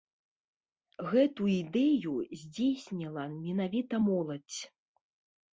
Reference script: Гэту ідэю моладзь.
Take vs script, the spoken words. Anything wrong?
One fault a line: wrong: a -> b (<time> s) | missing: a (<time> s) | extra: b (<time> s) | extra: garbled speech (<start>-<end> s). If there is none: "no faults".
extra: здзейсніла менавіта (2.5 s)